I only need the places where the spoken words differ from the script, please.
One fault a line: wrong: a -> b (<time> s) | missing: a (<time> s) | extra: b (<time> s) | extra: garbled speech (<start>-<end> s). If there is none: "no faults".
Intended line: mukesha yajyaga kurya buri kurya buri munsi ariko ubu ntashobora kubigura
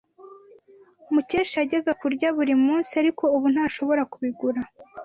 missing: kurya buri (2.5 s)